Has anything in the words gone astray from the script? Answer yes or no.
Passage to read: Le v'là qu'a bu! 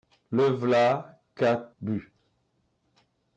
no